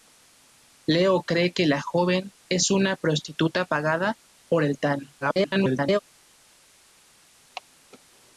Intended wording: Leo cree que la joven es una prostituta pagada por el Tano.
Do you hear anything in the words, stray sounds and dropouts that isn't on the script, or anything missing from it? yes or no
yes